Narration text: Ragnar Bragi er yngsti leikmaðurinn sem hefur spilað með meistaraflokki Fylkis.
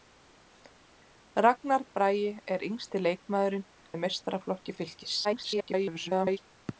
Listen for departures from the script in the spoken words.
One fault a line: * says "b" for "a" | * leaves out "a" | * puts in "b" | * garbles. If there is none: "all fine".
* leaves out "sem hefur spilað"
* garbles